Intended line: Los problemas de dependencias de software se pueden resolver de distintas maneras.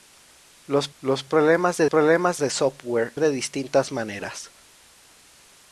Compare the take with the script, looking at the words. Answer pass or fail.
fail